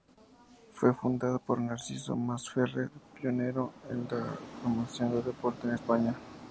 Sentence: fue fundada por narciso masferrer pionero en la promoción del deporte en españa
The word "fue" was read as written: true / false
true